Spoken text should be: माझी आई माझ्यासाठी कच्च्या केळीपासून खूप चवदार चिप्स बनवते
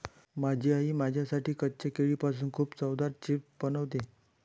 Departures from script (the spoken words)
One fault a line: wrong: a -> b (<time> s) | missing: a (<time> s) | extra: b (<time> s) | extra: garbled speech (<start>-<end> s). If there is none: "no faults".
no faults